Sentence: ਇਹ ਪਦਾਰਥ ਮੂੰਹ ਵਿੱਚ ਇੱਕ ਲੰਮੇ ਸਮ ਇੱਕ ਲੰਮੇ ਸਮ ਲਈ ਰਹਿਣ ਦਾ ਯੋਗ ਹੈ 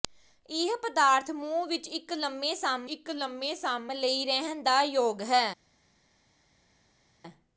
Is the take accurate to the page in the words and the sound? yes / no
yes